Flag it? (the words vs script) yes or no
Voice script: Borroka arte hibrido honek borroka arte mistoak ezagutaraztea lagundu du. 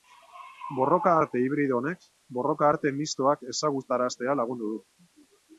no